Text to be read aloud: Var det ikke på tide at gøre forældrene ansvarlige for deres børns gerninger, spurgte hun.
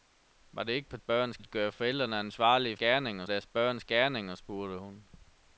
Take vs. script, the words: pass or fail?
fail